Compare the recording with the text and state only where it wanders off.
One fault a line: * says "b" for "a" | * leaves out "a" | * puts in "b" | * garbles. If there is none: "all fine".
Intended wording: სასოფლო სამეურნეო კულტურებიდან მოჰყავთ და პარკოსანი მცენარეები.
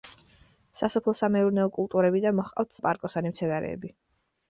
all fine